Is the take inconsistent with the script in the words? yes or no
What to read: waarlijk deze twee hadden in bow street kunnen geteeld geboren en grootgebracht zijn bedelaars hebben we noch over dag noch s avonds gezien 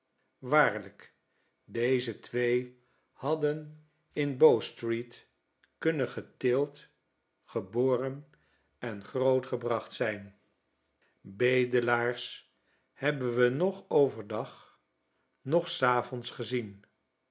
no